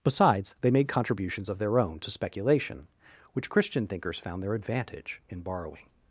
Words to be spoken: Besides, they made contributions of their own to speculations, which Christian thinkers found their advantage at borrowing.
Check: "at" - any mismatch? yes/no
yes